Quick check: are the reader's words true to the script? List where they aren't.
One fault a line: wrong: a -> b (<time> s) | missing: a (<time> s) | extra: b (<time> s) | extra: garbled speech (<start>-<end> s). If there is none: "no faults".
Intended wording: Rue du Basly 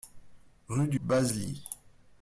no faults